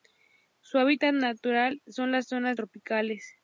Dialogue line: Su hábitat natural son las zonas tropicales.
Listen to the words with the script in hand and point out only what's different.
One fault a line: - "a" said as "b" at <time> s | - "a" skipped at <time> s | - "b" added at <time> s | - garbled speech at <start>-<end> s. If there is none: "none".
none